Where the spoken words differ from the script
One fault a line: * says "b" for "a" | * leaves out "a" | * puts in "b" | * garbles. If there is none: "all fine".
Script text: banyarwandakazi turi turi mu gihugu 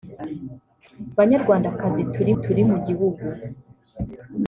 all fine